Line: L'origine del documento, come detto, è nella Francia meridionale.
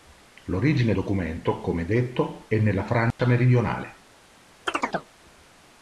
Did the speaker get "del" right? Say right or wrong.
wrong